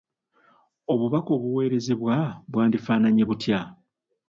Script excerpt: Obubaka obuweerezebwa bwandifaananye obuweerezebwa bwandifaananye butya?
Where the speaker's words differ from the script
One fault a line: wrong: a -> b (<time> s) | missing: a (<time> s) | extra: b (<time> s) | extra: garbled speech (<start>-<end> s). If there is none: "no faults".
missing: obuweerezebwa bwandifaananye (3.2 s)